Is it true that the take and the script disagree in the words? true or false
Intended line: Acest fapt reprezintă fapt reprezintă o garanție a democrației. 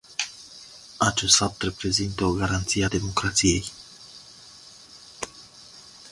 true